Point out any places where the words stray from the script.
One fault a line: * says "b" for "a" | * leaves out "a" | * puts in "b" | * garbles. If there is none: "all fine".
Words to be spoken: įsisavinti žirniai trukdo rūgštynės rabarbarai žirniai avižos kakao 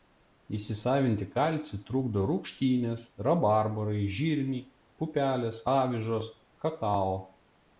* says "kalcį" for "žirniai"
* puts in "pupelės"